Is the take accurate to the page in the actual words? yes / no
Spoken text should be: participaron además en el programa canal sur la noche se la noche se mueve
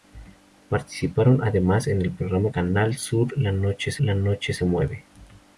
yes